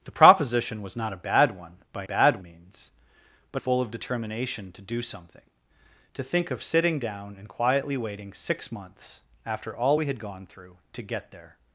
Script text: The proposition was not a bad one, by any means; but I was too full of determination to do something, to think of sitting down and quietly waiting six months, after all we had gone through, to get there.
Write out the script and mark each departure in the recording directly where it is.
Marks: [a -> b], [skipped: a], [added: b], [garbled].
The proposition was not a bad one, by [any -> bad] means; but [skipped: I was too] full of determination to do something, to think of sitting down and quietly waiting six months, after all we had gone through, to get there.